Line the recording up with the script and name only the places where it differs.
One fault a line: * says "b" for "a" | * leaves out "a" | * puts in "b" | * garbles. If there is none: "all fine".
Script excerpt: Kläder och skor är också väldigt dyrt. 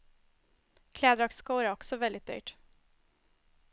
all fine